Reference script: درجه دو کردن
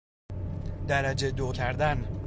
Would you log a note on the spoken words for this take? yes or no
no